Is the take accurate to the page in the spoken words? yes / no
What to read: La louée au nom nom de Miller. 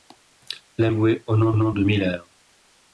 yes